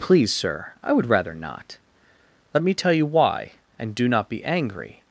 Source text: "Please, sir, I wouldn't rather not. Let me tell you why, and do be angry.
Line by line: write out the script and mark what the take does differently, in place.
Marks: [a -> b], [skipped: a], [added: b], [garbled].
"Please, sir, I [wouldn't -> would] rather not. Let me tell you why, and do [added: not] be angry.